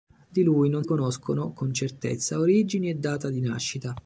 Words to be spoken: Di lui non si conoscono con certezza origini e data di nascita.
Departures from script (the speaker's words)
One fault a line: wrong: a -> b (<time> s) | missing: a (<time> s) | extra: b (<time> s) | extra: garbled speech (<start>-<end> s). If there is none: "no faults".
missing: si (0.8 s)